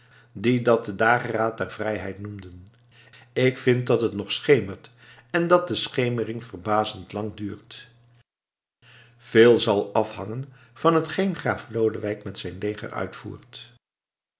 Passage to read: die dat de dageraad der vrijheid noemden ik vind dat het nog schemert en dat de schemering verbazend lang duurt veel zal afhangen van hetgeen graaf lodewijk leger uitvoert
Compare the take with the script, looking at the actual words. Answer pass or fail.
fail